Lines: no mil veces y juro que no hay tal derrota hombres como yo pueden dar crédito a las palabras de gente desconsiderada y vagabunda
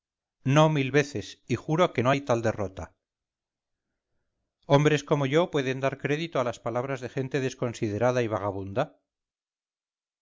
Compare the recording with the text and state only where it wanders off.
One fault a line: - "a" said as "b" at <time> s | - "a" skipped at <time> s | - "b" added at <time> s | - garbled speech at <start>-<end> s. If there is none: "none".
none